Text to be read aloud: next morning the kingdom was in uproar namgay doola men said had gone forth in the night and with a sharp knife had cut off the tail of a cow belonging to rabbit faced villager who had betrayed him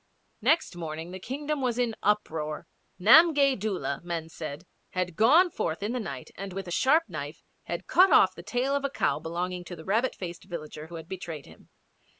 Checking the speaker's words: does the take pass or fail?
fail